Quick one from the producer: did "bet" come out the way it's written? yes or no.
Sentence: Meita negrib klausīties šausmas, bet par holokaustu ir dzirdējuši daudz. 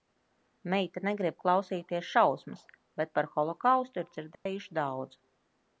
yes